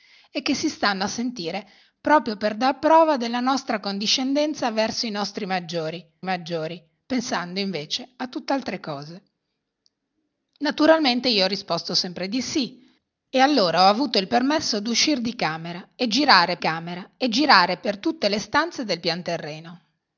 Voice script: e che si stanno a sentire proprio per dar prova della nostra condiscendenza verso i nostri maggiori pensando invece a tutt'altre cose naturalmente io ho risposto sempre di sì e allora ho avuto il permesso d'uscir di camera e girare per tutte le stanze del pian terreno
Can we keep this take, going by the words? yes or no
no